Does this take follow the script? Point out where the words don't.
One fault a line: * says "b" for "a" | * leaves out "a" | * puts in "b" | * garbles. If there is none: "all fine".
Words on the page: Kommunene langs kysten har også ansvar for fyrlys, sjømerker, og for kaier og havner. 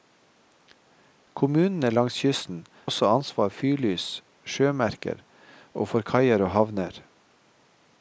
* leaves out "har"
* leaves out "for"